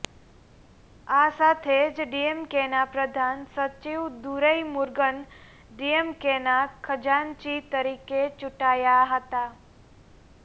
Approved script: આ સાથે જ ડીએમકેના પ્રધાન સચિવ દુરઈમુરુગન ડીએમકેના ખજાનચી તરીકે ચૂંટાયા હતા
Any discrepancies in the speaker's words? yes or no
no